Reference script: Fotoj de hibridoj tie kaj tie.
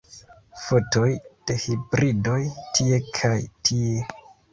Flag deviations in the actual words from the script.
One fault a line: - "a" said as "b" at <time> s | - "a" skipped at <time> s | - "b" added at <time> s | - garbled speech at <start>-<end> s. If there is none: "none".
none